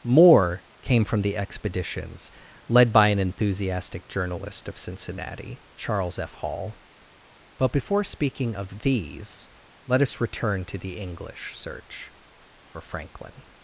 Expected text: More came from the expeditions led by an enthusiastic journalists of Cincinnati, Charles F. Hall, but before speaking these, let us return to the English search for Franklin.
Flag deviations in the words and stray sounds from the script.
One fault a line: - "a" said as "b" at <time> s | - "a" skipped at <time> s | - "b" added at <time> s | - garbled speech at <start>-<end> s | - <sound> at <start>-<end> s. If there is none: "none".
- "journalists" said as "journalist" at 4.1 s
- "of" added at 8.5 s